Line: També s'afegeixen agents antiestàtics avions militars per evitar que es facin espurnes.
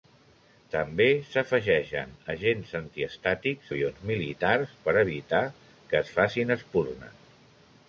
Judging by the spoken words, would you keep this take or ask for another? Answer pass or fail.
pass